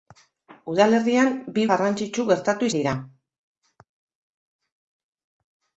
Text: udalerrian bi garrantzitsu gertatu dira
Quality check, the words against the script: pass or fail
pass